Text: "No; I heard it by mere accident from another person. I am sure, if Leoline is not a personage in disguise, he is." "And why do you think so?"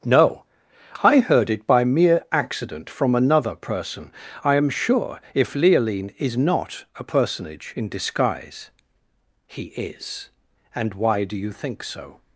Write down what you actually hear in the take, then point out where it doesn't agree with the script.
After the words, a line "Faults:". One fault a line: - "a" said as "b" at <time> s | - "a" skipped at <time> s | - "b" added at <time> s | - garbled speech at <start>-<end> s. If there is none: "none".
"No; I heard it by mere accident from another person. I am sure, if Leoline is not a personage in disguise, he is." "And why do you think so?"
Faults:
none